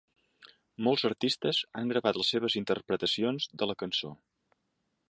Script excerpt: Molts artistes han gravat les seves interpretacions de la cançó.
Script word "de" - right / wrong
right